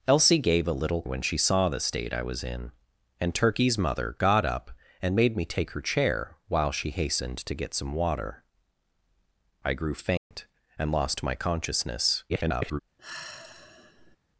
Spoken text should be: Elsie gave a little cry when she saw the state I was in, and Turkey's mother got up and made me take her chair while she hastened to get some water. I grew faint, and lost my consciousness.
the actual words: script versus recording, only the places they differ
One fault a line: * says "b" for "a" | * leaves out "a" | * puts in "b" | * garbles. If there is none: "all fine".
* leaves out "cry"
* garbles